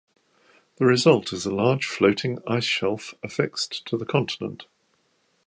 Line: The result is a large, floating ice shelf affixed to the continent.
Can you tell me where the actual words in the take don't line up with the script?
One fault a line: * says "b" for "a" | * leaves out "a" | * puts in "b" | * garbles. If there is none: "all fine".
all fine